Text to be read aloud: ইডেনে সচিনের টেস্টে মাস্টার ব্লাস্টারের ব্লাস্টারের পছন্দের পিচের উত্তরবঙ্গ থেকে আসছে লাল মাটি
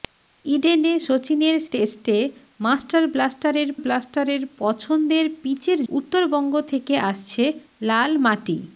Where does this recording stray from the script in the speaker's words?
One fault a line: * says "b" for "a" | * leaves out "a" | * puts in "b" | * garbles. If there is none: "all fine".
all fine